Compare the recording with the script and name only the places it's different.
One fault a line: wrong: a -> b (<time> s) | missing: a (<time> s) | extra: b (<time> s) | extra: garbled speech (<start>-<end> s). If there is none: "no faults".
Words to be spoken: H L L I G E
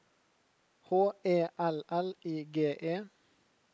extra: E (1.2 s)